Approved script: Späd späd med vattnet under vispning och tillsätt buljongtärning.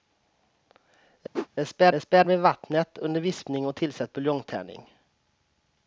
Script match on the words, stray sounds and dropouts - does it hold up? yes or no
no